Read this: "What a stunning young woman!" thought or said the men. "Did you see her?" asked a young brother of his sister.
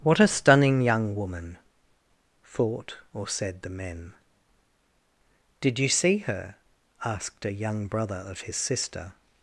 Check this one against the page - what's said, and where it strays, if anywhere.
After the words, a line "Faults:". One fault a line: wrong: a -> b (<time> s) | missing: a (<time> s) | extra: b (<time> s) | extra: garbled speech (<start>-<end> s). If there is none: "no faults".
"What a stunning young woman!" thought or said the men. "Did you see her?" asked a young brother of his sister.
Faults:
no faults